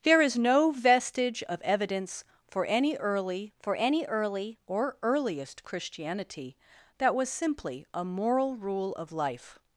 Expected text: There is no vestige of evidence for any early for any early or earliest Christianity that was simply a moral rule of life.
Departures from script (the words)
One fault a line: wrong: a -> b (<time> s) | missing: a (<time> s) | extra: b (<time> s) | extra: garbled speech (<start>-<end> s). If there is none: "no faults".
no faults